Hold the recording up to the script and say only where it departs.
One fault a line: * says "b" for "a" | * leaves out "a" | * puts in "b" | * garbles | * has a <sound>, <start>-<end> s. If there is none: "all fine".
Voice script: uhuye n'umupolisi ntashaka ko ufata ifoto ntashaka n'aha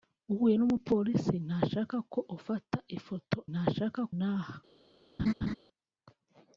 * has a laugh, 5.2-5.6 s